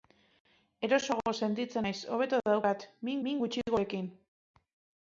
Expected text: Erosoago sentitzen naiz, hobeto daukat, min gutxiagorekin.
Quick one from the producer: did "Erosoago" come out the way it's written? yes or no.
yes